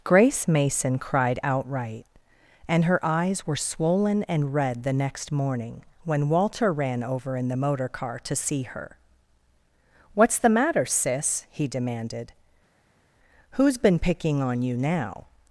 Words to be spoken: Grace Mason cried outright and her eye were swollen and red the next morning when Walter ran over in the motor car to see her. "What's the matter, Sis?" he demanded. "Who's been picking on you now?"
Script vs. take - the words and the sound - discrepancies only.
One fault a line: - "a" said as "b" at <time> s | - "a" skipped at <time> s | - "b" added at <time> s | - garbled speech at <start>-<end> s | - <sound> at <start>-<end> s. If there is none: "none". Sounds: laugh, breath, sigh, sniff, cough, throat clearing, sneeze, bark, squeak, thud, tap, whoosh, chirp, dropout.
- "eye" said as "eyes" at 3.0 s